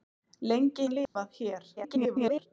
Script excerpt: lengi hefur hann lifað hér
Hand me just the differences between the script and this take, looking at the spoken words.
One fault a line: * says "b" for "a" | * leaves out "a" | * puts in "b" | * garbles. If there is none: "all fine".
* leaves out "hefur"
* garbles